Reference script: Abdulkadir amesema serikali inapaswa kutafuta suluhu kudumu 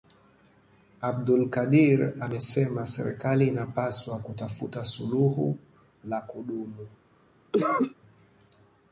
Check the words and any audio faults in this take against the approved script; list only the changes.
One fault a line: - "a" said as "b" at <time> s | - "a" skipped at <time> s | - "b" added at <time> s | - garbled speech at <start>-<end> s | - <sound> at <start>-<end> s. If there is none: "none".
- "la" added at 6.0 s
- cough at 7.5-7.9 s